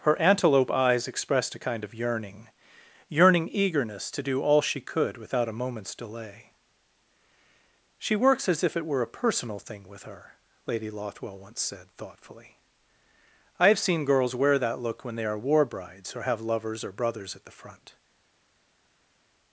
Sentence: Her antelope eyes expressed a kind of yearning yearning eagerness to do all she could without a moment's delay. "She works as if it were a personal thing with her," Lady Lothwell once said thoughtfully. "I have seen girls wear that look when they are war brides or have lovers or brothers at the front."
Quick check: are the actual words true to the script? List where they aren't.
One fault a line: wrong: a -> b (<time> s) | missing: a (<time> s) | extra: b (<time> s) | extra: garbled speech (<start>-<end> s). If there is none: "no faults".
no faults